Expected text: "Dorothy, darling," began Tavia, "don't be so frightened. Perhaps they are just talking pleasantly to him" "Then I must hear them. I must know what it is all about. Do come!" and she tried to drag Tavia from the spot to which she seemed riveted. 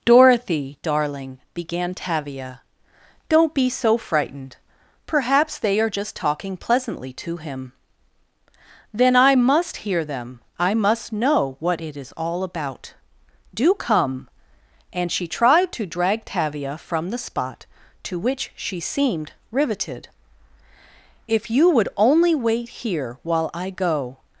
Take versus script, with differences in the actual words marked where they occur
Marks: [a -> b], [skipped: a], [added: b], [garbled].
"Dorothy, darling," began Tavia, "don't be so frightened. Perhaps they are just talking pleasantly to him" "Then I must hear them. I must know what it is all about. Do come!" and she tried to drag Tavia from the spot to which she seemed riveted. [added: If you would only wait here while I go]